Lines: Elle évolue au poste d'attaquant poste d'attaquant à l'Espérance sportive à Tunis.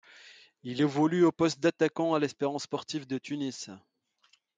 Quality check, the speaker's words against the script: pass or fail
fail